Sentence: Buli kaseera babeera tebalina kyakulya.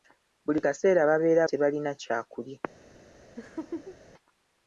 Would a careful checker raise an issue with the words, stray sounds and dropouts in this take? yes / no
yes